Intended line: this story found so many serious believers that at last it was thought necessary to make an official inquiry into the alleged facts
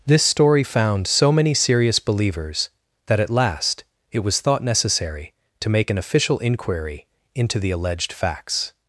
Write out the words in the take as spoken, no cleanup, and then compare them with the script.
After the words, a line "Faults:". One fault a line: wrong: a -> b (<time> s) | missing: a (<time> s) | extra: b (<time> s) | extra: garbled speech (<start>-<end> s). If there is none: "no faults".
this story found so many serious believers that at last it was thought necessary to make an official inquiry into the alleged facts
Faults:
no faults